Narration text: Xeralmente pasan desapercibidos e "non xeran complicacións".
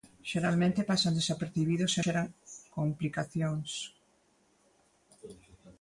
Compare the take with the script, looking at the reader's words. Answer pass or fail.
fail